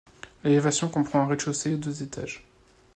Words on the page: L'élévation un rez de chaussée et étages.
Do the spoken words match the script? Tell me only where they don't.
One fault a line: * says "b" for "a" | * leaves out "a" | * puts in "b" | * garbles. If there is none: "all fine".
* puts in "comprend"
* puts in "deux"